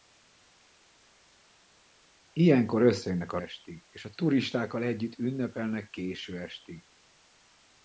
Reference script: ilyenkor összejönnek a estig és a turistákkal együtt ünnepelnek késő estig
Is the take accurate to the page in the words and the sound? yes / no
yes